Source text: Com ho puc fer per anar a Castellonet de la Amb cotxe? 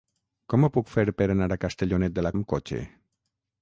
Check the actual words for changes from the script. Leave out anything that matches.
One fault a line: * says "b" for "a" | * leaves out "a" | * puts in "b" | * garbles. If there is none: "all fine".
all fine